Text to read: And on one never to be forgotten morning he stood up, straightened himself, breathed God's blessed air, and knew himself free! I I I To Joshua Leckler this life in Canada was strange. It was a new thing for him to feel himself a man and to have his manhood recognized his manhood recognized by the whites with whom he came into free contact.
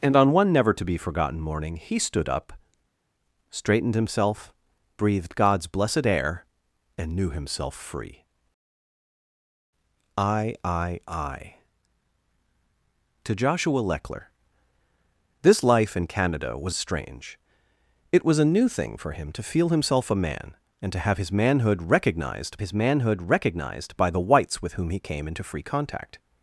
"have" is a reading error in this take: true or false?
false